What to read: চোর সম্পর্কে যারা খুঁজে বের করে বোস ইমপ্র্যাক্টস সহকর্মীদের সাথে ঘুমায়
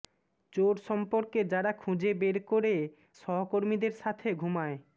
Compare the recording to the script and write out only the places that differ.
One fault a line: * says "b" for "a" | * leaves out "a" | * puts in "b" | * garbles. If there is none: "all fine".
* leaves out "বোস ইমপ্র্যাক্টস"